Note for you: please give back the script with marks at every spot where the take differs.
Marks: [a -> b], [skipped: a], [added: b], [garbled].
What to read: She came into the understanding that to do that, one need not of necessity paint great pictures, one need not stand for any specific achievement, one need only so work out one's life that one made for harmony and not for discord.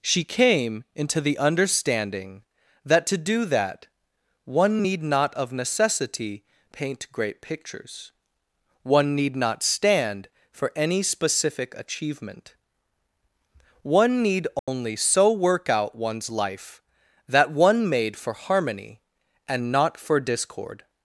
She came into the understanding that to do that, one need not of necessity paint great pictures, one need not stand for any specific achievement, one need only so work out one's life that one made for harmony and not for discord.